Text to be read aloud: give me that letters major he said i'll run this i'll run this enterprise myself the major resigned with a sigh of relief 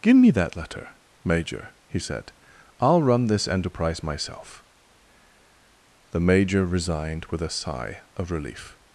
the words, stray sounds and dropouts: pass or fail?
fail